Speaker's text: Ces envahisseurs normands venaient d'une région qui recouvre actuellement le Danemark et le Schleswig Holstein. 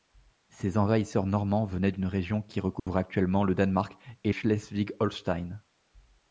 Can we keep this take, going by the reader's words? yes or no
no